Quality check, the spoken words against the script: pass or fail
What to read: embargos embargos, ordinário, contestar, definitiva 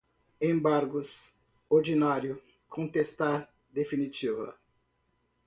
fail